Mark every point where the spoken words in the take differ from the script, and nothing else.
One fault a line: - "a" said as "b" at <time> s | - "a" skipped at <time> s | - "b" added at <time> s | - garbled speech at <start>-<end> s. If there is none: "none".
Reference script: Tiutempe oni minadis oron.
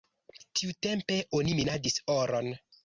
none